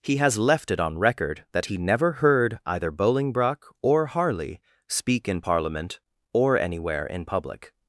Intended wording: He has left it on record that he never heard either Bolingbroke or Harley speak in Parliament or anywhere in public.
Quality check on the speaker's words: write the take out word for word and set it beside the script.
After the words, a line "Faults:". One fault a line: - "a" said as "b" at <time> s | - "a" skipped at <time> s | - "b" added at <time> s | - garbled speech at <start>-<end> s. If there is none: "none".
He has left it on record that he never heard either Bolingbroke or Harley speak in Parliament or anywhere in public.
Faults:
none